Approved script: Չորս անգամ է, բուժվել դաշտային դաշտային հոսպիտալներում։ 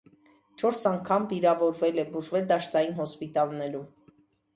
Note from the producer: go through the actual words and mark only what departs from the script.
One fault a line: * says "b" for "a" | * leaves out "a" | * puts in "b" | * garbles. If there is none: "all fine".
* puts in "վիրավորվել"
* leaves out "դաշտային"